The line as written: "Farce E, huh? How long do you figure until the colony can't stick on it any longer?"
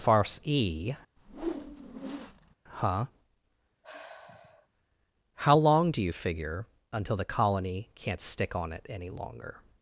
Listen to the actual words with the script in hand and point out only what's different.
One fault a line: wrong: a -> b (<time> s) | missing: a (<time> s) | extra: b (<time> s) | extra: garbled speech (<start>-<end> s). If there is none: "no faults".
no faults